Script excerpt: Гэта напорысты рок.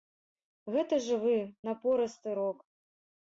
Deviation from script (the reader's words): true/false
true